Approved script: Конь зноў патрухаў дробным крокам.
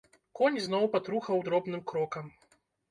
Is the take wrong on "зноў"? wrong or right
right